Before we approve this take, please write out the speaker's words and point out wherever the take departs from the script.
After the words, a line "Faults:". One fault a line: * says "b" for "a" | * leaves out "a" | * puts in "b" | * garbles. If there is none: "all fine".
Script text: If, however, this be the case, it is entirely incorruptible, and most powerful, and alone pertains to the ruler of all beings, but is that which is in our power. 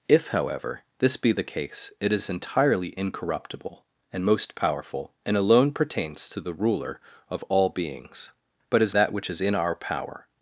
If, however, this be the case, it is entirely incorruptible, and most powerful, and alone pertains to the ruler of all beings, but is that which is in our power.
Faults:
all fine